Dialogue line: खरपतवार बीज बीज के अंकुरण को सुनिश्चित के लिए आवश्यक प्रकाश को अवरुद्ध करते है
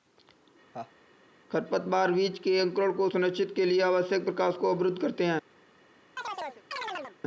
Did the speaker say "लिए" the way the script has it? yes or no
yes